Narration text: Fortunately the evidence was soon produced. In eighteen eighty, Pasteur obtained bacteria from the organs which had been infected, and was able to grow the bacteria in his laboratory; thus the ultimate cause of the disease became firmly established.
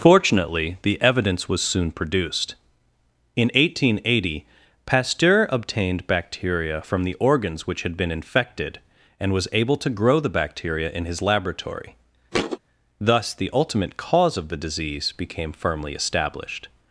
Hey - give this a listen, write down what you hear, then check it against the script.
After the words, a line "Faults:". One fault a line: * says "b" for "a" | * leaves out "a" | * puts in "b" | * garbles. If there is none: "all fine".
Fortunately the evidence was soon produced. In eighteen eighty, Pasteur obtained bacteria from the organs which had been infected, and was able to grow the bacteria in his laboratory; thus the ultimate cause of the disease became firmly established.
Faults:
all fine